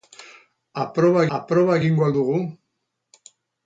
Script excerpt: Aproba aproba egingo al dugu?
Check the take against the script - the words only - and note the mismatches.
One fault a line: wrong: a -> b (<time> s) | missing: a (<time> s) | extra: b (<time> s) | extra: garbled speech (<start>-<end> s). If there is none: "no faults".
no faults